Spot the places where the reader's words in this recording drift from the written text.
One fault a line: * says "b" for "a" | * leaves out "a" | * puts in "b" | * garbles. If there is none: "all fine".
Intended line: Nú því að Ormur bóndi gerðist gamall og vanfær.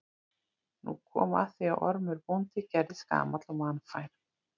* puts in "kom að"